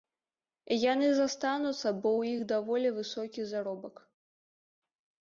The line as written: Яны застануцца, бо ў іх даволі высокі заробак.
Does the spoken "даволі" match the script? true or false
true